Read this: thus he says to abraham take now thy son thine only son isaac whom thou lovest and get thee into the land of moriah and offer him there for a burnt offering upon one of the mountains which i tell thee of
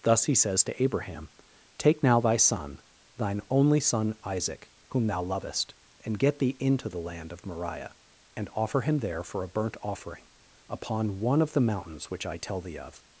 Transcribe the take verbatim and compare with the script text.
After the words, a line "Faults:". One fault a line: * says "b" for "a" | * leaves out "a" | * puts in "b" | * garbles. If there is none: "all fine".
thus he says to abraham take now thy son thine only son isaac whom thou lovest and get thee into the land of moriah and offer him there for a burnt offering upon one of the mountains which i tell thee of
Faults:
all fine